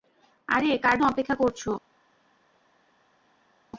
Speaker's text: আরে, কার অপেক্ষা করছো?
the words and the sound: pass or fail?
pass